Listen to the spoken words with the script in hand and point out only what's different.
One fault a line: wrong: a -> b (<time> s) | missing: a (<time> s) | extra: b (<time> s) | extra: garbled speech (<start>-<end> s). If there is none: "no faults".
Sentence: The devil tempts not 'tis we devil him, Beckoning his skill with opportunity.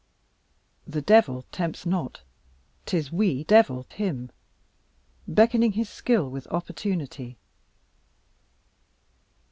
no faults